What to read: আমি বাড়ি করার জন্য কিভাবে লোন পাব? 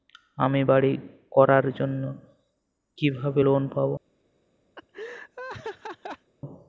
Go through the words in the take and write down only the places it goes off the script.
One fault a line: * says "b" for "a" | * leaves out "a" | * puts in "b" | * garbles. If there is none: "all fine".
all fine